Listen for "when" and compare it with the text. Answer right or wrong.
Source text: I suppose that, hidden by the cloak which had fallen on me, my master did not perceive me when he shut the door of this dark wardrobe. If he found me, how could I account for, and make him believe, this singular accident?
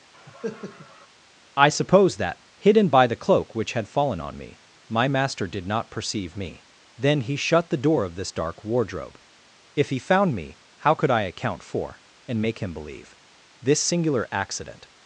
wrong